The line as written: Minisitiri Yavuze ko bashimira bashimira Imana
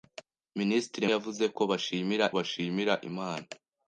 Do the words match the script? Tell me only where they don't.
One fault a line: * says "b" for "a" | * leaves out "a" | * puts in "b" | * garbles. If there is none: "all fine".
all fine